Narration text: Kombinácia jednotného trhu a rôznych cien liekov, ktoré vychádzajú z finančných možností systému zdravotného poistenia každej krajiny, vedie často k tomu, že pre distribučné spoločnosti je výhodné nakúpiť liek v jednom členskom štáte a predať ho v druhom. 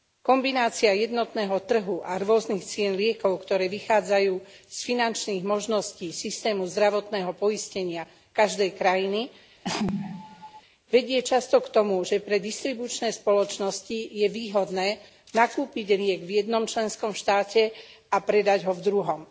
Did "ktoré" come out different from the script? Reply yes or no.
no